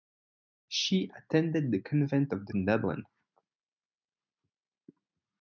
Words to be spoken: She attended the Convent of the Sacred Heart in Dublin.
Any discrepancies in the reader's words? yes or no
yes